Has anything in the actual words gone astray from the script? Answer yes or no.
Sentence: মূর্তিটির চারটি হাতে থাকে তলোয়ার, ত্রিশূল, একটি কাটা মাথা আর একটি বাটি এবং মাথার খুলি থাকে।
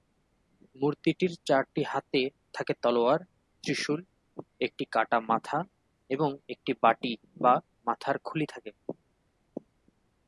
yes